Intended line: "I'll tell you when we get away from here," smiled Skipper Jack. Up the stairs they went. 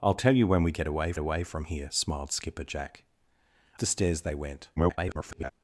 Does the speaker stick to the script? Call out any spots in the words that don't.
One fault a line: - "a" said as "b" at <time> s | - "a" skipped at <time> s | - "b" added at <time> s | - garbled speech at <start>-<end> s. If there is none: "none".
- "away" added at 1.2 s
- "Up" skipped at 3.0 s
- garbled speech at 4.8-5.5 s